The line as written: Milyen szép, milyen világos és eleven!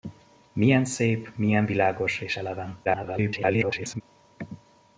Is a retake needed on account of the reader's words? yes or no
yes